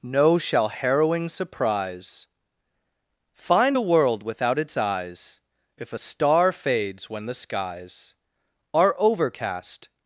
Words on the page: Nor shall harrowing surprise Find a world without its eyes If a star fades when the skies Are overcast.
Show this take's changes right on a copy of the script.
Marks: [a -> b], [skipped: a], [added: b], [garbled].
[Nor -> No] shall harrowing surprise Find a world without its eyes If a star fades when the skies Are overcast.